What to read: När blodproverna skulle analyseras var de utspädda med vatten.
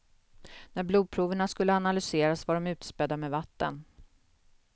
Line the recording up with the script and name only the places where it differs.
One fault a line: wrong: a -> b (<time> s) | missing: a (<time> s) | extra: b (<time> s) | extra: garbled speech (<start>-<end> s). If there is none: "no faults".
no faults